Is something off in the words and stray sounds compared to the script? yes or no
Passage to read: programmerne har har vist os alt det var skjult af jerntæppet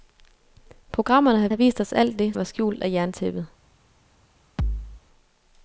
yes